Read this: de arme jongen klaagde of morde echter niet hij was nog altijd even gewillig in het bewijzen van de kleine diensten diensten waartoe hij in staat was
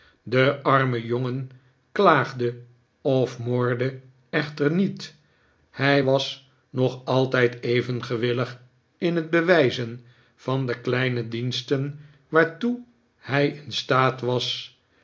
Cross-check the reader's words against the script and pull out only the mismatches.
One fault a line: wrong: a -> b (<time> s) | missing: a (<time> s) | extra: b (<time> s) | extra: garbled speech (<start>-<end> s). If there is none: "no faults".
missing: diensten (12.0 s)